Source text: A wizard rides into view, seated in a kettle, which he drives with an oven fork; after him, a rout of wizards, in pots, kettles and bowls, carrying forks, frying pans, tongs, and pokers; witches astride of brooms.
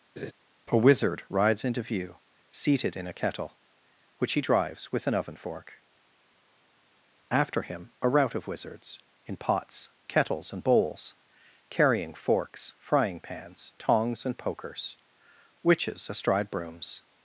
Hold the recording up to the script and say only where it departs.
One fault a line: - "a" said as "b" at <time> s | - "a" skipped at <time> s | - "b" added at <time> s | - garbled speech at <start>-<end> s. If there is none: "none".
- "of" skipped at 16.5 s